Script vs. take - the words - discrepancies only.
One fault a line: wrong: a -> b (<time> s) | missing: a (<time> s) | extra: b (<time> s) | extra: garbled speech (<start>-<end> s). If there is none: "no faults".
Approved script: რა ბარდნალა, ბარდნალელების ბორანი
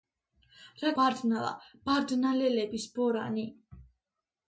no faults